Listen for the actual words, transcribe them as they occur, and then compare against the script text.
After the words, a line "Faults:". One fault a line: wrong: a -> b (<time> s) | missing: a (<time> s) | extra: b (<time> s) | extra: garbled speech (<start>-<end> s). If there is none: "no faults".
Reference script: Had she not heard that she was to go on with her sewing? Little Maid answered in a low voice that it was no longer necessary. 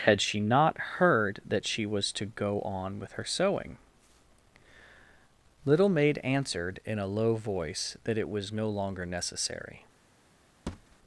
Had she not heard that she was to go on with her sewing? Little Maid answered in a low voice that it was no longer necessary.
Faults:
no faults